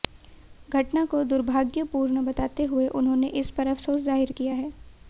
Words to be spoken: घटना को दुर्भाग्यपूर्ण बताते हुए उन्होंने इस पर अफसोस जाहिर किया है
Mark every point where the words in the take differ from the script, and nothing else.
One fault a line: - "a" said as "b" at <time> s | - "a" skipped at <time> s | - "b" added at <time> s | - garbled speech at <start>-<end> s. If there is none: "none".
none